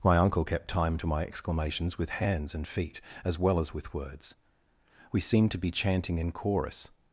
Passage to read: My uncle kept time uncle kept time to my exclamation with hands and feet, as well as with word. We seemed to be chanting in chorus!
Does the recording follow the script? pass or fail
fail